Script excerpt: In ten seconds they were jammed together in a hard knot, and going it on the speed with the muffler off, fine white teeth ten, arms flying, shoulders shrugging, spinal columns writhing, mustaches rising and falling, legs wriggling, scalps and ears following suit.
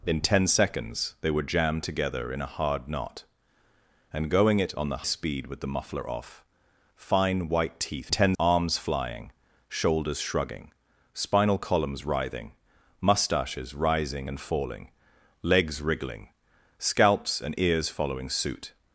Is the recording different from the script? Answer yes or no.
no